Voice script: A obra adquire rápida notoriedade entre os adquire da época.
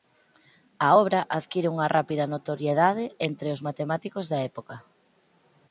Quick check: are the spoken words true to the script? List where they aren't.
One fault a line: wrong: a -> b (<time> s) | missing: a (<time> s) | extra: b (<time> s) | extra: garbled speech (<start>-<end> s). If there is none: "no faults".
extra: unha (1.7 s)
wrong: adquire -> matemáticos (3.7 s)